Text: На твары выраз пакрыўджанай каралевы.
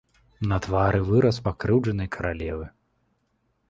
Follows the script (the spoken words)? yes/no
yes